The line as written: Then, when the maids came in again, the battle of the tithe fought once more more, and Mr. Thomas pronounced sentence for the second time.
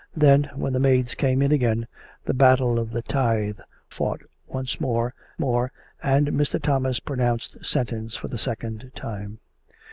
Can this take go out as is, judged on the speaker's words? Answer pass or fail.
pass